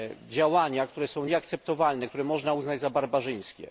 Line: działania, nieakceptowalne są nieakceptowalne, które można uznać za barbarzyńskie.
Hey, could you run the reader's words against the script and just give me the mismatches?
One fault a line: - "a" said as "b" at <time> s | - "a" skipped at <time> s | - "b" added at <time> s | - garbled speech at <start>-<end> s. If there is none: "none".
- "nieakceptowalne" said as "które" at 0.9 s